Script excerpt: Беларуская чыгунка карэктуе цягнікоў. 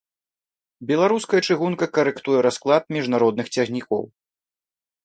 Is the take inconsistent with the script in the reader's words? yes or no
yes